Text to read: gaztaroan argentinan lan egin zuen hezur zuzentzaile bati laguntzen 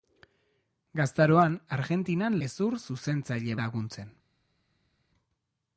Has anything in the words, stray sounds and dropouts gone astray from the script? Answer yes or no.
yes